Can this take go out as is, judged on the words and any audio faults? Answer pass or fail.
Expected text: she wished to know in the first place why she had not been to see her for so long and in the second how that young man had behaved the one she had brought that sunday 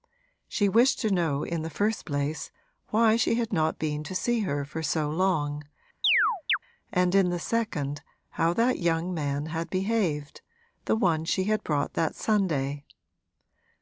fail